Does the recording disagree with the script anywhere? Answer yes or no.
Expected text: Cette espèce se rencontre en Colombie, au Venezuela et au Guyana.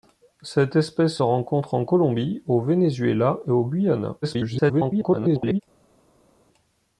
yes